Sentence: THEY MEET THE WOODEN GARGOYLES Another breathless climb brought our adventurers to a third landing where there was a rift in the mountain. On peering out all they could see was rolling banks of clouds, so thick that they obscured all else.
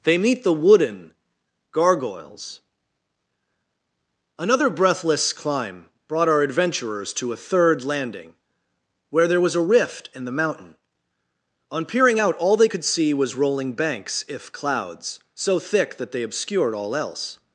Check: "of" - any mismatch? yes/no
yes